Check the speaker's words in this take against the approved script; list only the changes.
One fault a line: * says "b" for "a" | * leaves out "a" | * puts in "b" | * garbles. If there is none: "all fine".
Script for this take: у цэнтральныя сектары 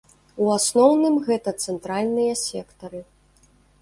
* puts in "асноўным гэта"